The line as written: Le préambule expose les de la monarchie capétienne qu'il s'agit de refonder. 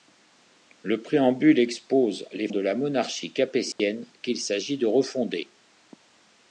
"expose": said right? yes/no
yes